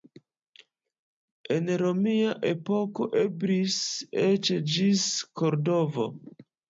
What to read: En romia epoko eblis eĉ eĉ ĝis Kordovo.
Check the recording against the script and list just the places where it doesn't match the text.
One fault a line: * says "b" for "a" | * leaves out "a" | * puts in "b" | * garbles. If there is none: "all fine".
* leaves out "eĉ"